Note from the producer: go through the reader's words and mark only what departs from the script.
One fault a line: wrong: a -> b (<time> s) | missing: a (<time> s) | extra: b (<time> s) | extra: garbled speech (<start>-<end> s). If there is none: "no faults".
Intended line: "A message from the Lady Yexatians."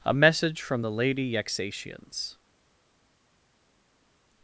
no faults